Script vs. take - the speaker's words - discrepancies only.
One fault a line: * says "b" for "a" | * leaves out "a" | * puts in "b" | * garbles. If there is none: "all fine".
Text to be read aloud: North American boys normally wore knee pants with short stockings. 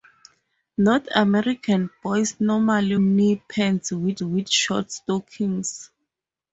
* leaves out "wore"
* puts in "with"